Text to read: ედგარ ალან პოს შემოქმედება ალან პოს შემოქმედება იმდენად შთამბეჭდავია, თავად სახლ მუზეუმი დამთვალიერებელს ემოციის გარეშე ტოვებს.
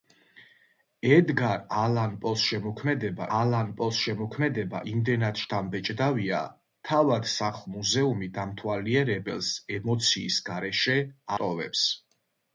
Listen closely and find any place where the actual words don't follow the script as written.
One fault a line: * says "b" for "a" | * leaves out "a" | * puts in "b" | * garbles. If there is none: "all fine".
all fine